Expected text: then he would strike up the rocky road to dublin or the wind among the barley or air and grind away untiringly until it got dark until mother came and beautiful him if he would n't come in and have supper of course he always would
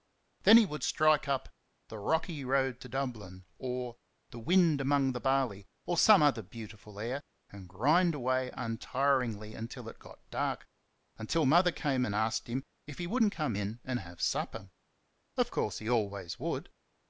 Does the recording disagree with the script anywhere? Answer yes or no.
yes